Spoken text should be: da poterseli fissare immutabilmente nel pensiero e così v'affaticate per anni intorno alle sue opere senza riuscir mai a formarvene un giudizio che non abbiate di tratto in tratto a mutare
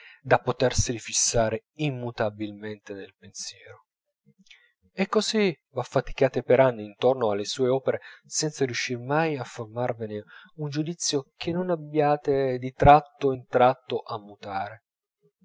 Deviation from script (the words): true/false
false